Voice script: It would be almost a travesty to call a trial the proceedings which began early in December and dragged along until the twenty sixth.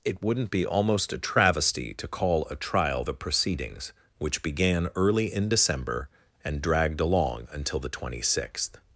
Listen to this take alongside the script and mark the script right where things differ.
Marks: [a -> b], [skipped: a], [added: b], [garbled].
It [would -> wouldn't] be almost a travesty to call a trial the proceedings which began early in December and dragged along until the twenty sixth.